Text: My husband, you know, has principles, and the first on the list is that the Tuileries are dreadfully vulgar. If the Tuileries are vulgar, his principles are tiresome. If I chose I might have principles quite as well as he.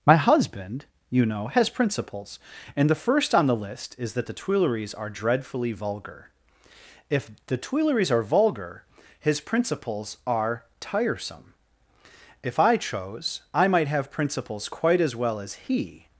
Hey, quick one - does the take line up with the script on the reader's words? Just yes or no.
yes